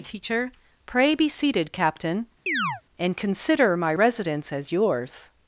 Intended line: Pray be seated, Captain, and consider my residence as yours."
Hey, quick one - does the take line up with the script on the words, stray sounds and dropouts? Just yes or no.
no